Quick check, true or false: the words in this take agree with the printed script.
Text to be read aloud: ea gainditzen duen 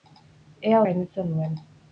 true